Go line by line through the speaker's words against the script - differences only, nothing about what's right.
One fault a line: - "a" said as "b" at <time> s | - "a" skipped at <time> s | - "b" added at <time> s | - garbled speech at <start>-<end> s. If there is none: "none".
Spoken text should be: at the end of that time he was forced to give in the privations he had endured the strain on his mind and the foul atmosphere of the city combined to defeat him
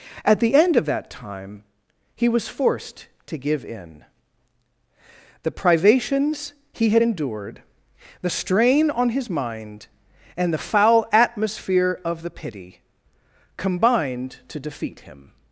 - "city" said as "pity" at 12.3 s